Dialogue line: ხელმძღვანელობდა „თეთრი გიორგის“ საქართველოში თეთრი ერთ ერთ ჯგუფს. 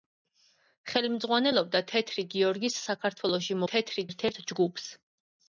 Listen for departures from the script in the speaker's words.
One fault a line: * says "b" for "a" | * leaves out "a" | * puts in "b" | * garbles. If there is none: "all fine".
all fine